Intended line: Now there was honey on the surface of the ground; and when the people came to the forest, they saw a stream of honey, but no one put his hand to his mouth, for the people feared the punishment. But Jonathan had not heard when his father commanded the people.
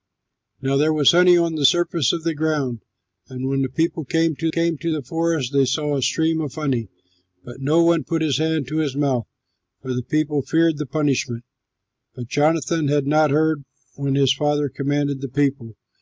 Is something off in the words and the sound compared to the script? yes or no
yes